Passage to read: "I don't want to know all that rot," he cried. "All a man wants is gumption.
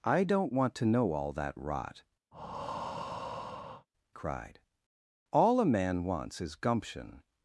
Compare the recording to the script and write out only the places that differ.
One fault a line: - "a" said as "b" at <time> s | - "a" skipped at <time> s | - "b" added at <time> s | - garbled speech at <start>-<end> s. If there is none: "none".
- "he" skipped at 2.0 s